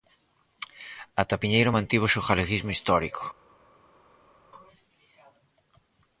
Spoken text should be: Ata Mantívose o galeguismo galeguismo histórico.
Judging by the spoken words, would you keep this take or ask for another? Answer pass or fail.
fail